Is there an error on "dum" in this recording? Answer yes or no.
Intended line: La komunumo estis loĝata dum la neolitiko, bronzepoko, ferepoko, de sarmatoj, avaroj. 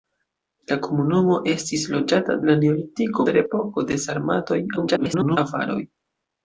yes